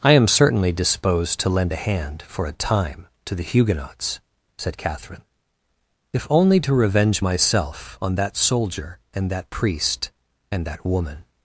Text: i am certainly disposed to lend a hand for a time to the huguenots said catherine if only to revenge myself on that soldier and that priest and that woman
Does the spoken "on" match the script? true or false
true